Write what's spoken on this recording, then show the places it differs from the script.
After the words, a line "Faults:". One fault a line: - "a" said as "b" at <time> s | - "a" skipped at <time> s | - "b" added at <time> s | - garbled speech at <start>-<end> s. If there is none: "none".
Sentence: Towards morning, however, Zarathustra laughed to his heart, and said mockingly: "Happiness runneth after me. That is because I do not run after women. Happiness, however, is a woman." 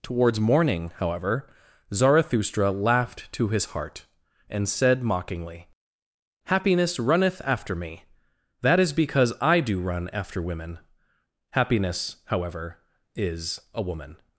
Towards morning, however, Zarathustra laughed to his heart, and said mockingly: "Happiness runneth after me. That is because I do run after women. Happiness, however, is a woman."
Faults:
- "not" skipped at 9.8 s